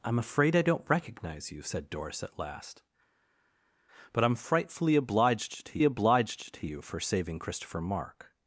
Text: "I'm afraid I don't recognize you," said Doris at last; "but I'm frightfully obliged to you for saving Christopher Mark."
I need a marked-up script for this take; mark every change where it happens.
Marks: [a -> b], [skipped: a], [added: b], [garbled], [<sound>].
"I'm afraid I don't recognize you," said Doris at last; "but I'm frightfully obliged to [added: obliged to] you for saving Christopher Mark."